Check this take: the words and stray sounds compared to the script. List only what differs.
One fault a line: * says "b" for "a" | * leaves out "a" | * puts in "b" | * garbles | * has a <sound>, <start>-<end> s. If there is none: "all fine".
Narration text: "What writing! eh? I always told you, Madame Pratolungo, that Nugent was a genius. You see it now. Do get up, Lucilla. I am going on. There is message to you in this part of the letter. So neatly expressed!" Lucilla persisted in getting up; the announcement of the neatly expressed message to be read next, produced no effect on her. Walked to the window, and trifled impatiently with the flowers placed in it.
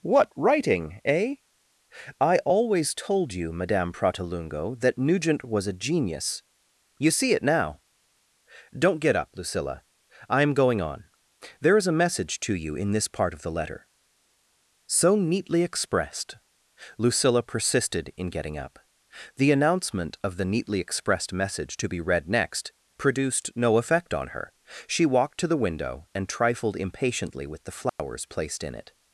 * says "Don't" for "Do"
* puts in "a"
* puts in "She"
* has a dropout, 27.9-28.0 s